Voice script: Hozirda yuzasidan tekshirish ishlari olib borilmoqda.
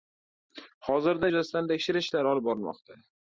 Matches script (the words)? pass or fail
pass